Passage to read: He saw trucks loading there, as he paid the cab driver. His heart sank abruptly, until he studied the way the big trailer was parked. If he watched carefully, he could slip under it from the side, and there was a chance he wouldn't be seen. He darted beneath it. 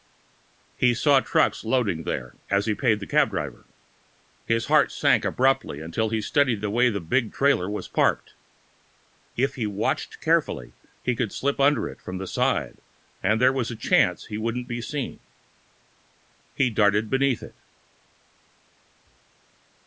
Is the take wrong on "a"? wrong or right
right